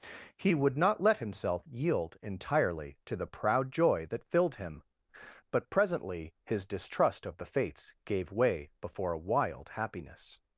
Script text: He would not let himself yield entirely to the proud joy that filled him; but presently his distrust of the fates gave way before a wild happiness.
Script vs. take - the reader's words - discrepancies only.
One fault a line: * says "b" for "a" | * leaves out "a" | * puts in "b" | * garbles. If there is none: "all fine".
all fine